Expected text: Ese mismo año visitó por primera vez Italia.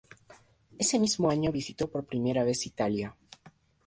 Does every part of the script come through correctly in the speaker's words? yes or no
yes